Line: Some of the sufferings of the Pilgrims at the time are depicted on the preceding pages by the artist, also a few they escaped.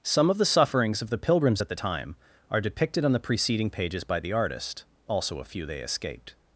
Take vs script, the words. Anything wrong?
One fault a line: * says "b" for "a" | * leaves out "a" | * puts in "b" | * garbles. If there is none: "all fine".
all fine